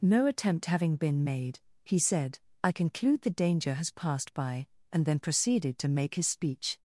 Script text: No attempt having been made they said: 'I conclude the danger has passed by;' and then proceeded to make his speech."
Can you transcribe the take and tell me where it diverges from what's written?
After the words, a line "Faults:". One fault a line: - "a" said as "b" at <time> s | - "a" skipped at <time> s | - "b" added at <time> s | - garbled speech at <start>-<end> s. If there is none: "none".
No attempt having been made he said: 'I conclude the danger has passed by;' and then proceeded to make his speech."
Faults:
- "they" said as "he" at 1.9 s